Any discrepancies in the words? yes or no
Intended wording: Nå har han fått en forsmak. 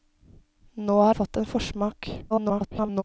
yes